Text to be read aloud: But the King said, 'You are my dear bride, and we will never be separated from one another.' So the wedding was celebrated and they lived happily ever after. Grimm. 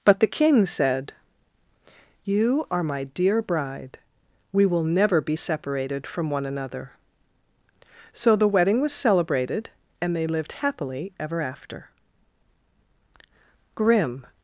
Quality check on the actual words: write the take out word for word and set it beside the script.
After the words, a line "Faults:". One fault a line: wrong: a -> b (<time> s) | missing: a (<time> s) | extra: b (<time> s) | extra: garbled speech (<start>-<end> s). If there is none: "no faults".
But the King said, 'You are my dear bride, we will never be separated from one another.' So the wedding was celebrated and they lived happily ever after. Grimm.
Faults:
missing: and (4.0 s)